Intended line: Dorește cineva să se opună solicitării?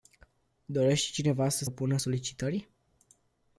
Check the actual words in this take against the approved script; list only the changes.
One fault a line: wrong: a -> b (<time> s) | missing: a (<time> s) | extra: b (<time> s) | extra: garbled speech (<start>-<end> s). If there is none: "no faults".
missing: se (1.6 s)